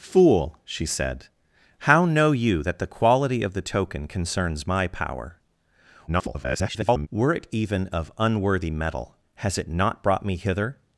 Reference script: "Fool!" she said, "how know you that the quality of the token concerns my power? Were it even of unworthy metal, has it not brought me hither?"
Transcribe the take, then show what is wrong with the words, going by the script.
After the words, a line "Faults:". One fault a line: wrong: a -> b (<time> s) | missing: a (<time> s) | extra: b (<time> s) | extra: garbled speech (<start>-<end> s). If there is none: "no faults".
"Fool!" she said, "how know you that the quality of the token concerns my power? [garbled] Were it even of unworthy metal, has it not brought me hither?"
Faults:
extra: garbled speech (6.1-7.1 s)